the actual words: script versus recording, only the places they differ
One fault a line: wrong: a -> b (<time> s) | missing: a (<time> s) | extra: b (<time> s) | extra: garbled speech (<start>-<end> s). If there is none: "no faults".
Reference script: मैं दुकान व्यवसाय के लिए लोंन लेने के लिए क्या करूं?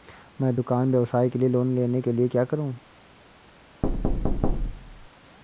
no faults